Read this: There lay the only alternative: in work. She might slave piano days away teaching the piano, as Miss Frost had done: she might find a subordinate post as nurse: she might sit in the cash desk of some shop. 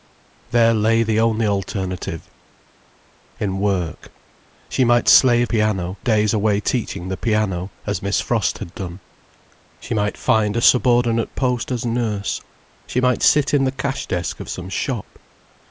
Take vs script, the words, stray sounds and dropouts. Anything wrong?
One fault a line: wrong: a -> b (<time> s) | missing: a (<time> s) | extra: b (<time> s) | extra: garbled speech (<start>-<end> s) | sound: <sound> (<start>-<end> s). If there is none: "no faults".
no faults